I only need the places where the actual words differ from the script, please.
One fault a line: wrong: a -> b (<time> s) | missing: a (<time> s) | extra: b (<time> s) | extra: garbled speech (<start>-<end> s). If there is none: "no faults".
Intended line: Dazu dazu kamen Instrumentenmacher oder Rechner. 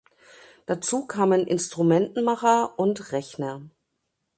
missing: dazu (1.1 s)
wrong: oder -> und (2.8 s)